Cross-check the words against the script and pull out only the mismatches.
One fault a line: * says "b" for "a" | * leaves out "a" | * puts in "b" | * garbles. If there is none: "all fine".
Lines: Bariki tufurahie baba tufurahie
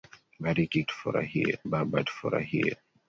all fine